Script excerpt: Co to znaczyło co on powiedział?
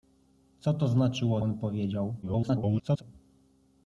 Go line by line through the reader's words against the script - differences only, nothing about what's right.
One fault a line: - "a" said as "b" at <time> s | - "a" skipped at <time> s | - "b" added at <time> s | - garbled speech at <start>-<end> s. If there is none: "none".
- "co" skipped at 1.4 s
- garbled speech at 2.2-3.0 s